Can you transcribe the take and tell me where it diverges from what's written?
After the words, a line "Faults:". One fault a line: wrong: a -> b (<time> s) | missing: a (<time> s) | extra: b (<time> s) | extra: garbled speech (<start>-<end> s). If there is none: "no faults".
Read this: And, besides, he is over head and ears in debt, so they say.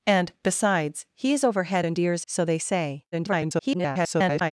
And, besides, he is over head and ears so they say. [garbled]
Faults:
missing: in debt (2.2 s)
extra: garbled speech (3.1-4.5 s)